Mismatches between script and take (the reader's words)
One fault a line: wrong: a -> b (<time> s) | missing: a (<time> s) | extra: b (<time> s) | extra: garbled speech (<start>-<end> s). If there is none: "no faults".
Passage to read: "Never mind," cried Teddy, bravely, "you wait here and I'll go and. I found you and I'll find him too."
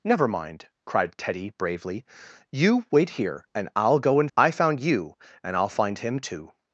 no faults